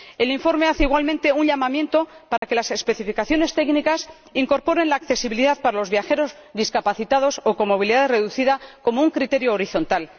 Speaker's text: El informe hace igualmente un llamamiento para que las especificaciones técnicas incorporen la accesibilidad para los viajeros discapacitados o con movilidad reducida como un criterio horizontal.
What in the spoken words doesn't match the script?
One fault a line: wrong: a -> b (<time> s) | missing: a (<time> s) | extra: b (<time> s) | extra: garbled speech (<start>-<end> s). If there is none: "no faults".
no faults